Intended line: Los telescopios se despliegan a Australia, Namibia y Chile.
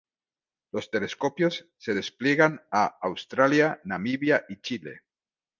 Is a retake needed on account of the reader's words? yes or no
no